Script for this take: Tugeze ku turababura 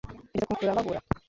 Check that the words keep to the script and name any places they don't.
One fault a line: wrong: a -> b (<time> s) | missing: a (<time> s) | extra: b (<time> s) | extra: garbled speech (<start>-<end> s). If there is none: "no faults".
no faults